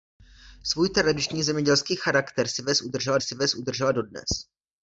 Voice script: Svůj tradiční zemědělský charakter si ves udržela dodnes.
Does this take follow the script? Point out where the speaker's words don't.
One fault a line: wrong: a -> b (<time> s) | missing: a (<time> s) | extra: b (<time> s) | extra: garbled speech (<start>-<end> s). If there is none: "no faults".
extra: si ves udržela (3.2 s)